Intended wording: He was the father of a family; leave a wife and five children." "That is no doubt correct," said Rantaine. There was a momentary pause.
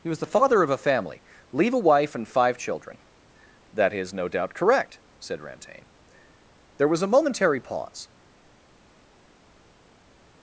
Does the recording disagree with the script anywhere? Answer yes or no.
no